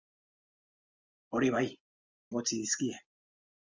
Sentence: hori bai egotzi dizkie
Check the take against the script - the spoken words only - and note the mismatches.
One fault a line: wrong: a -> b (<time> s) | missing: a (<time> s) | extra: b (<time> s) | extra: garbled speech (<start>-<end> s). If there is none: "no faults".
no faults